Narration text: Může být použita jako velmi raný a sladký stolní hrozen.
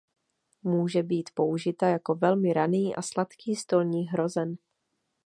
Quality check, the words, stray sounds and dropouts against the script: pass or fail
pass